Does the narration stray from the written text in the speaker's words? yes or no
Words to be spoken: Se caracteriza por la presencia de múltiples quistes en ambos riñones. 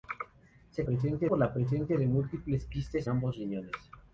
yes